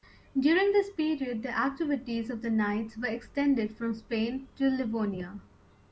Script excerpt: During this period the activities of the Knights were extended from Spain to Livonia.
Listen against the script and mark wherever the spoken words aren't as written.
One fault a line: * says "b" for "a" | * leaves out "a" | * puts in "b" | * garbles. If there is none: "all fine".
all fine